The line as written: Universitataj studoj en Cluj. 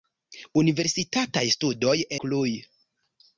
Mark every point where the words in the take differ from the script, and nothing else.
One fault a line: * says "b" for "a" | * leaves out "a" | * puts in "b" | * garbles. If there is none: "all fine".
* leaves out "en"